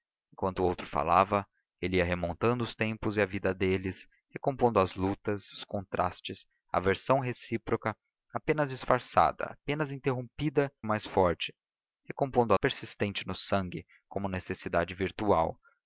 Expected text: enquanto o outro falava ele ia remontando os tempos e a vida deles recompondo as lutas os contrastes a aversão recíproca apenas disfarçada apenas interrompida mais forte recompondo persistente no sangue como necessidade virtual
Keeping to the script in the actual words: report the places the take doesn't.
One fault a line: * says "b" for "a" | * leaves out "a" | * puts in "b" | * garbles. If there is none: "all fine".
all fine